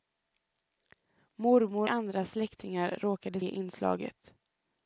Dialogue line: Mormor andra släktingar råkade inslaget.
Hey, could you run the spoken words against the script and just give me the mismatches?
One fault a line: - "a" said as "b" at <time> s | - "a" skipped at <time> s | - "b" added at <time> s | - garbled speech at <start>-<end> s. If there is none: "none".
none